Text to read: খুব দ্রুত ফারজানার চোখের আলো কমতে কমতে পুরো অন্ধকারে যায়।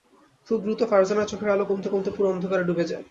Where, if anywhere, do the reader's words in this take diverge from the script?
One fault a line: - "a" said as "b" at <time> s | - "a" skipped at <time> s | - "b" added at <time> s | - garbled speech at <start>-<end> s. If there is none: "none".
- "ডুবে" added at 2.6 s